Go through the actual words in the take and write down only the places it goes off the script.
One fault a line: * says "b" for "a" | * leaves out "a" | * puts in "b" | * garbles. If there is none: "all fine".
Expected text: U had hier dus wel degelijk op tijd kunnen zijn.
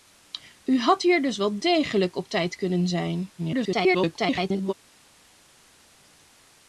* garbles